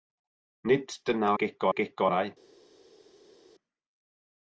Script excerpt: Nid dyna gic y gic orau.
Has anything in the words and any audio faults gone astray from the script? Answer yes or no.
no